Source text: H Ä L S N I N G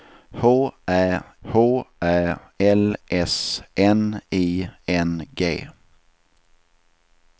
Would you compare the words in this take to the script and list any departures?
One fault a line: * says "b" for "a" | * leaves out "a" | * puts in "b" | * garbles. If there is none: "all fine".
* puts in "h Ä"